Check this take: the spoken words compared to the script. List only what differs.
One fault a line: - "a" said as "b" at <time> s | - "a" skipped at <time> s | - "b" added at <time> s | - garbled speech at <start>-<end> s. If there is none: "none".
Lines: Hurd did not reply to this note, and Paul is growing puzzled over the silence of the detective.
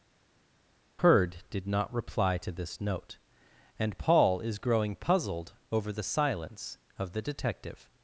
none